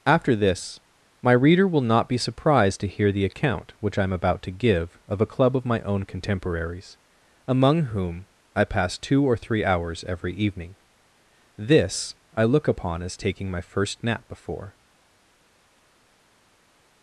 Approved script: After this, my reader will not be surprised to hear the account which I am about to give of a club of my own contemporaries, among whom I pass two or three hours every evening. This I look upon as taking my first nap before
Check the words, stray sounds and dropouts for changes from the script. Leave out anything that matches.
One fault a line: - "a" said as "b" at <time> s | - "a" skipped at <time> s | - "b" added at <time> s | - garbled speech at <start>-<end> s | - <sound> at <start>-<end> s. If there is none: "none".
none